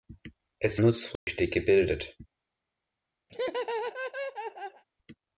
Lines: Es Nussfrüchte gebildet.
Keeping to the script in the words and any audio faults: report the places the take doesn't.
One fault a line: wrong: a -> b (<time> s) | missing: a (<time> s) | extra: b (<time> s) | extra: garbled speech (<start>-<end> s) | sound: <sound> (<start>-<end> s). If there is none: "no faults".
sound: dropout (1.2-1.3 s)
sound: laugh (3.3-4.8 s)